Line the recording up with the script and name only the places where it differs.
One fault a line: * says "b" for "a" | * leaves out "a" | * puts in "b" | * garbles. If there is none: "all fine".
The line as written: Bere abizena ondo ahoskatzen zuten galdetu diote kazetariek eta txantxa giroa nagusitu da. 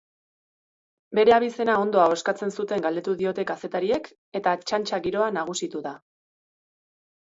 all fine